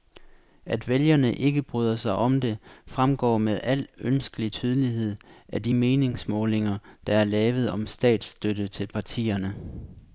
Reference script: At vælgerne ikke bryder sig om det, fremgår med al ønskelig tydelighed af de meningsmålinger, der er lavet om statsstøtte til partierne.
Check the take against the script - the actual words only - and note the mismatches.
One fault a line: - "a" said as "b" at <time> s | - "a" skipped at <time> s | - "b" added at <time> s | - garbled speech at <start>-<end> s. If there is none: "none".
none